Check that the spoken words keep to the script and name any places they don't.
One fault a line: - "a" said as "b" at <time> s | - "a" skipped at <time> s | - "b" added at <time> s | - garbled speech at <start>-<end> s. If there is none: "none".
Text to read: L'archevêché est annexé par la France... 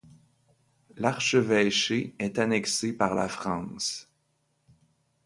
none